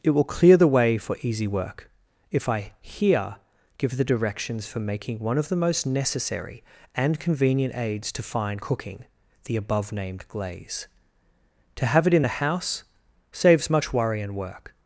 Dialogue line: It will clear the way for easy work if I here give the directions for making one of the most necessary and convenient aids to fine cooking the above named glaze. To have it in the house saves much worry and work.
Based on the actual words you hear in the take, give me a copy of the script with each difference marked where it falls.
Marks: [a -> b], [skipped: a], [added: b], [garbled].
It will clear the way for easy work if I here give the directions for making one of the most necessary and convenient aids to fine cooking the above named glaze. To have it in the house saves much worry and work.